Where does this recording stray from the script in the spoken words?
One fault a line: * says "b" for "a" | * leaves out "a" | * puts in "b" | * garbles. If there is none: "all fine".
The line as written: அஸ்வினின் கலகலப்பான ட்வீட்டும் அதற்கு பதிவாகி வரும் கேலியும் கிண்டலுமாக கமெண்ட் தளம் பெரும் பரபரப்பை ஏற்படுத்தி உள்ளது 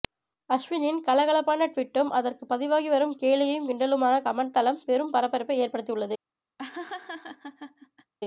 all fine